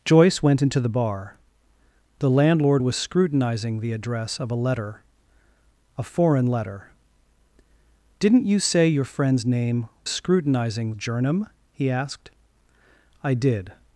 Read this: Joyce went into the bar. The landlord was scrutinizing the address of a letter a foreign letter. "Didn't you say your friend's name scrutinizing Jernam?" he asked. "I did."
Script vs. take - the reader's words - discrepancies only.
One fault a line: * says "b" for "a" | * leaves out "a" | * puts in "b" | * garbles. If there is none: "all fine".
all fine